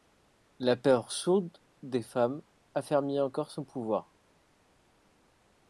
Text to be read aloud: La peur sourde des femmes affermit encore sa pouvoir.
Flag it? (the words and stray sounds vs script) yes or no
yes